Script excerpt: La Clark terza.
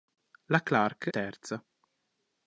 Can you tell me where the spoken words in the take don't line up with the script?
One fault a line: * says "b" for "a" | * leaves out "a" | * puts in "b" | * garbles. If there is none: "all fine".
all fine